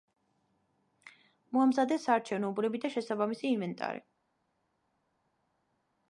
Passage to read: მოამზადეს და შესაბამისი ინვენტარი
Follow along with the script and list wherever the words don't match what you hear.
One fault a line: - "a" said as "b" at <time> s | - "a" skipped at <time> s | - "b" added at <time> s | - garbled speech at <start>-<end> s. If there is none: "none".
- "საარჩევნო უბნები" added at 2.1 s